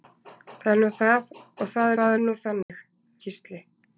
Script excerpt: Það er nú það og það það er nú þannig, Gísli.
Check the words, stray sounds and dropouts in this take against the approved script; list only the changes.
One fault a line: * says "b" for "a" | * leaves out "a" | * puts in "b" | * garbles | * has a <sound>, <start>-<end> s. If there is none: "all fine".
* has a dropout, 2.6-2.7 s